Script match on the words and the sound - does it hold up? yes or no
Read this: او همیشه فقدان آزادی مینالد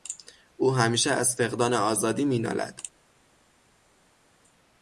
no